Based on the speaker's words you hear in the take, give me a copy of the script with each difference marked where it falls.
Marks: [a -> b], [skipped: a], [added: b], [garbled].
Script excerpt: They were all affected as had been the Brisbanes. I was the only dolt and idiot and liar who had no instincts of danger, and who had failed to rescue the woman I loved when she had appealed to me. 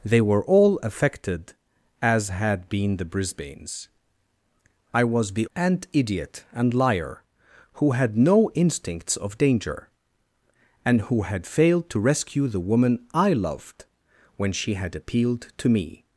They were all affected as had been the Brisbanes. I was the [skipped: only dolt] and idiot and liar who had no instincts of danger, and who had failed to rescue the woman I loved when she had appealed to me.